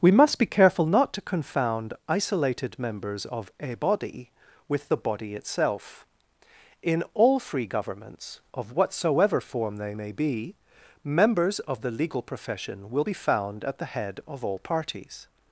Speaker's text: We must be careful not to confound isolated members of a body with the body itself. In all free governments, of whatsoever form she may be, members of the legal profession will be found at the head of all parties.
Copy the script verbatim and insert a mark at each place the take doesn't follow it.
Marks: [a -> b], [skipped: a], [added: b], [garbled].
We must be careful not to confound isolated members of a body with the body itself. In all free governments, of whatsoever form [she -> they] may be, members of the legal profession will be found at the head of all parties.